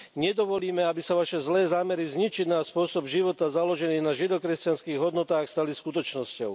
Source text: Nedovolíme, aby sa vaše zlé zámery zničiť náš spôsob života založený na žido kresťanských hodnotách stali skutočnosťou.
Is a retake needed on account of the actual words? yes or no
no